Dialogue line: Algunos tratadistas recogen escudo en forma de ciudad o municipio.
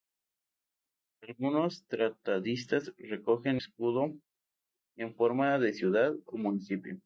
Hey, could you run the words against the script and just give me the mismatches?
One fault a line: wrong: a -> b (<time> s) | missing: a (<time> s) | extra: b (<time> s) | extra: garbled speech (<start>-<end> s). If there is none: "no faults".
no faults